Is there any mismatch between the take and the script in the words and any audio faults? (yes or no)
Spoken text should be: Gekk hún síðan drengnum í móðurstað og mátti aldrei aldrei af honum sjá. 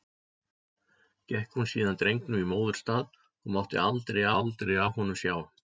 no